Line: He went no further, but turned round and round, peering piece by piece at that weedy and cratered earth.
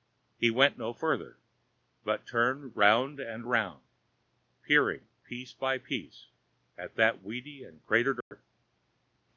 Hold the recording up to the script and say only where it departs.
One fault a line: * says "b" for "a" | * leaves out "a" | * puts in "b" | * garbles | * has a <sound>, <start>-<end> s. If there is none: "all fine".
* has a dropout, 8.2-8.3 s